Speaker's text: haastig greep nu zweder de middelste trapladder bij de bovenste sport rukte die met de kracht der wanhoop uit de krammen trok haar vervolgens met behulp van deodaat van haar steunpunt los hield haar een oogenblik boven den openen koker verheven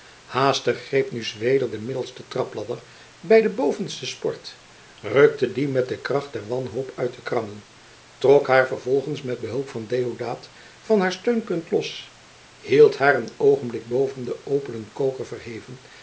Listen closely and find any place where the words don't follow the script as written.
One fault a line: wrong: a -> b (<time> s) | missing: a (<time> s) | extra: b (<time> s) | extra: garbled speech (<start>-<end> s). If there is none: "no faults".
no faults